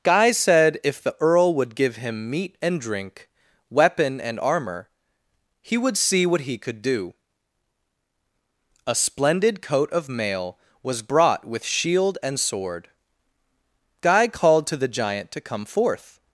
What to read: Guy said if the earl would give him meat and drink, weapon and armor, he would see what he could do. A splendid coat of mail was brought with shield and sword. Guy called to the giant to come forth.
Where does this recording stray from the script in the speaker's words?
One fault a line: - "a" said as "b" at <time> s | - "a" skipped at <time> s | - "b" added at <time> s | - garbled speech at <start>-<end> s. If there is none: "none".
none